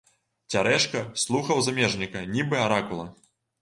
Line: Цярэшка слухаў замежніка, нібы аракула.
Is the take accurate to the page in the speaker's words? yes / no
yes